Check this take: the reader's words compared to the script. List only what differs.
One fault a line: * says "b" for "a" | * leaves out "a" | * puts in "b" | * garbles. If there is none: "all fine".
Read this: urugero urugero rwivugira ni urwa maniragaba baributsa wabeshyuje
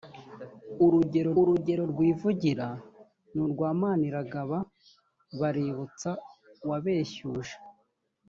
all fine